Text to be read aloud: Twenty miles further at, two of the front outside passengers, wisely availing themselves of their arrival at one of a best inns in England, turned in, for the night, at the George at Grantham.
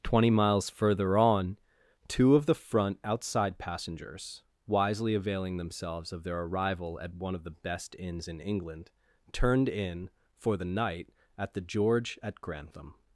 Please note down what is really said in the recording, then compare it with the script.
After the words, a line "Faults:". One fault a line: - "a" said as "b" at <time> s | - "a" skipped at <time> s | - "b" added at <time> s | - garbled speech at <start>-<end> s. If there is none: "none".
Twenty miles further on, two of the front outside passengers, wisely availing themselves of their arrival at one of the best inns in England, turned in, for the night, at the George at Grantham.
Faults:
- "at" said as "on" at 1.2 s
- "a" said as "the" at 7.4 s